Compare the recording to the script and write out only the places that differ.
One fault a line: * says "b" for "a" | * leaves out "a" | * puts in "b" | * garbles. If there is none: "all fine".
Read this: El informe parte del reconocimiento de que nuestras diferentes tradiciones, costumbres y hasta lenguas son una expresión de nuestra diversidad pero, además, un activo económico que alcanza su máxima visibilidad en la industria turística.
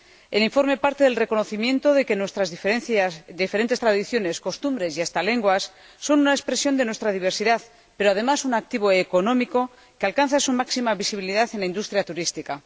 all fine